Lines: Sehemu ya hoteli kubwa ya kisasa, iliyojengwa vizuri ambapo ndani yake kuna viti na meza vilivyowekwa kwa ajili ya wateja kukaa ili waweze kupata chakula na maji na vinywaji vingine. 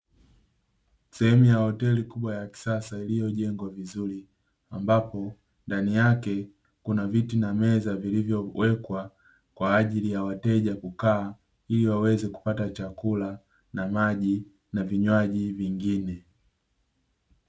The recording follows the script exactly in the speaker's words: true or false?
true